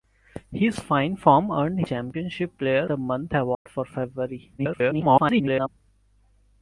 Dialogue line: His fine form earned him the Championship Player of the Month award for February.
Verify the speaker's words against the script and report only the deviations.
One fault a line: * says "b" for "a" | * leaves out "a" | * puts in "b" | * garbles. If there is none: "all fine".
* leaves out "him the"
* leaves out "of"
* garbles